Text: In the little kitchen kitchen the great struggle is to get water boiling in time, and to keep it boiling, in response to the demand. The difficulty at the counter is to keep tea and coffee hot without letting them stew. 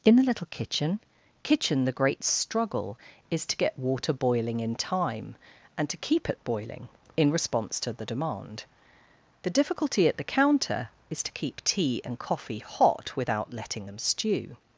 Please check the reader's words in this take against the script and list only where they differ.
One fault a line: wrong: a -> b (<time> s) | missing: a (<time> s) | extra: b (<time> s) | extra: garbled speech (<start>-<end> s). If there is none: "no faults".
no faults